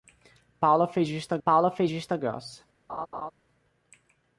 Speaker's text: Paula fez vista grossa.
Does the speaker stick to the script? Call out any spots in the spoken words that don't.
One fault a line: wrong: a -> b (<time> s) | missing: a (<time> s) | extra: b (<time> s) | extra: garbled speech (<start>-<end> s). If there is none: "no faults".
extra: paula fez vista (1.4 s)